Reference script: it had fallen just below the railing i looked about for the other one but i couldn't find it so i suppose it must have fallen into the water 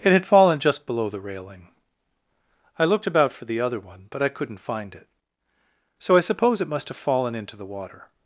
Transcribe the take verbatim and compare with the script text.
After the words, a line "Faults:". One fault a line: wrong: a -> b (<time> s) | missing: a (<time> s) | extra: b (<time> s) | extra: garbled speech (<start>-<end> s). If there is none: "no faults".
it had fallen just below the railing i looked about for the other one but i couldn't find it so i suppose it must have fallen into the water
Faults:
no faults